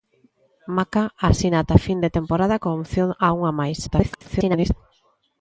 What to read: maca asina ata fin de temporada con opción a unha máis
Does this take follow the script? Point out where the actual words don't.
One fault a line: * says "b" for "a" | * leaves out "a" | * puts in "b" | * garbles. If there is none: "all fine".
* garbles